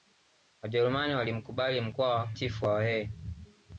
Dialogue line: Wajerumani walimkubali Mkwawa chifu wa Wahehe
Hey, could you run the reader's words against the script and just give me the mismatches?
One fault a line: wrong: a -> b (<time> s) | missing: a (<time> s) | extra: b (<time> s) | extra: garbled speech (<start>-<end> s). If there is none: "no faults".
no faults